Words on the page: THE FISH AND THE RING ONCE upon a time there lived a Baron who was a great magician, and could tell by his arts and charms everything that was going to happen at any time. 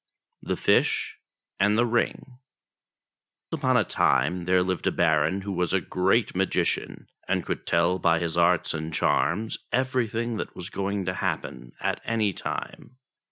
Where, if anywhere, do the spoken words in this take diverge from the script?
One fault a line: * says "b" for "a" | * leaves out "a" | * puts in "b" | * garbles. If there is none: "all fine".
* leaves out "ONCE"